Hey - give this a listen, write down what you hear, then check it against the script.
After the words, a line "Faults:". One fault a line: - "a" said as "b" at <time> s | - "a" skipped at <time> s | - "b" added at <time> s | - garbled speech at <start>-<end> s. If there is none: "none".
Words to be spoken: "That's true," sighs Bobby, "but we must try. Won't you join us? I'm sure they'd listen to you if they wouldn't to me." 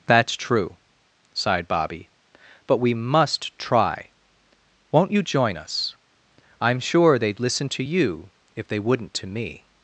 "That's true," sighed Bobby, "but we must try. Won't you join us? I'm sure they'd listen to you if they wouldn't to me."
Faults:
- "sighs" said as "sighed" at 1.3 s